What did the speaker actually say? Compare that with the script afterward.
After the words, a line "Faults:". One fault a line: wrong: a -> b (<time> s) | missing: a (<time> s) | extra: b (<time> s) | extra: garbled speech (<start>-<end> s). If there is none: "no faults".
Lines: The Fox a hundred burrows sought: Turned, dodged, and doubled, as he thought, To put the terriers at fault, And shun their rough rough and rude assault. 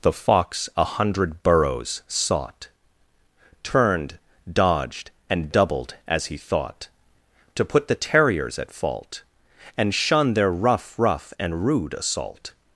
The Fox a hundred burrows sought: Turned, dodged, and doubled, as he thought, To put the terriers at fault, And shun their rough rough and rude assault.
Faults:
no faults